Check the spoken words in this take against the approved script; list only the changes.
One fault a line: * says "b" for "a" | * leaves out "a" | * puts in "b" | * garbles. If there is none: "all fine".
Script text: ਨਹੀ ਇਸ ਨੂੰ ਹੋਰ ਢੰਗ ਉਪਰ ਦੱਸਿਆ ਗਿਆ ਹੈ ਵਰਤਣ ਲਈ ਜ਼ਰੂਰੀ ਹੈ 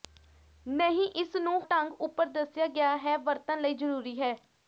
* leaves out "ਹੋਰ"